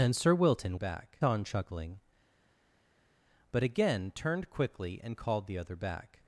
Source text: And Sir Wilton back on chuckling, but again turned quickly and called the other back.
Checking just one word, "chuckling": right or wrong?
right